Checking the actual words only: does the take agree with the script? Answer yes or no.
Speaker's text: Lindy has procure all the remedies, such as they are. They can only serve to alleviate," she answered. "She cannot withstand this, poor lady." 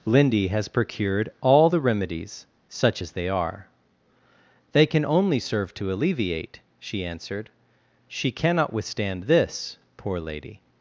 no